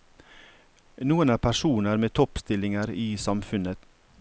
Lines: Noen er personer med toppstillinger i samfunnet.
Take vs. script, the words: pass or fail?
pass